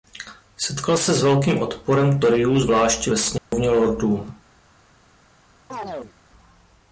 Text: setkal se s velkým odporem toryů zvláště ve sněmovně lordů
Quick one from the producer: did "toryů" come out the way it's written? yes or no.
yes